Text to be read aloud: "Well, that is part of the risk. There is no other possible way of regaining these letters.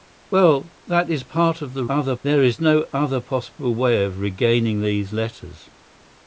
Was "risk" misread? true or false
true